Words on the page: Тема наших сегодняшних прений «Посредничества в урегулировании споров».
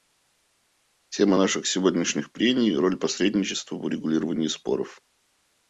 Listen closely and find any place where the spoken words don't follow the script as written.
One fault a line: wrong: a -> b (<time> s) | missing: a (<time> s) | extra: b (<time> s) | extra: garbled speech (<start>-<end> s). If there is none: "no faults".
extra: Роль (2.7 s)